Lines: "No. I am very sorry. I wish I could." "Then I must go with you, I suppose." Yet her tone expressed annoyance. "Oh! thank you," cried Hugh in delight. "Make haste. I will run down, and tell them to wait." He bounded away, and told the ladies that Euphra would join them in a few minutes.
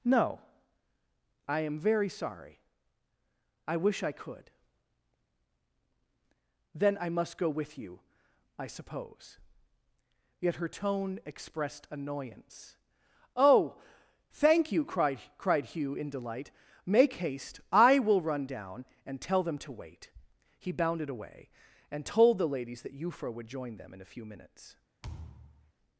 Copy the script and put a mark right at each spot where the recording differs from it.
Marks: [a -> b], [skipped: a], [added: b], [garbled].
"No. I am very sorry. I wish I could." "Then I must go with you, I suppose." Yet her tone expressed annoyance. "Oh! thank you," cried [added: cried] Hugh in delight. "Make haste. I will run down, and tell them to wait." He bounded away, and told the ladies that Euphra would join them in a few minutes.